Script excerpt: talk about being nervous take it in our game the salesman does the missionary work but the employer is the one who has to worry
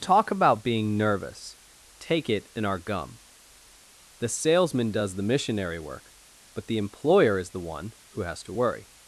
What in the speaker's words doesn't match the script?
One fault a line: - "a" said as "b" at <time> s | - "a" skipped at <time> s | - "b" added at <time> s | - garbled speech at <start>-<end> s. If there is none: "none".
- "game" said as "gum" at 2.8 s